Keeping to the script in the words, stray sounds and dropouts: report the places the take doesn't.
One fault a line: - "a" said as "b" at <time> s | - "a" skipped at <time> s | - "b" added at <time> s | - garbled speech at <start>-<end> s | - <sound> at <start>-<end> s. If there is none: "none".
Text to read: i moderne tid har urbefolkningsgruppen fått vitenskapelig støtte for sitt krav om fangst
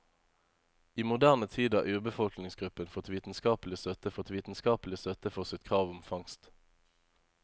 - "fått vitenskapelig støtte" added at 4.1 s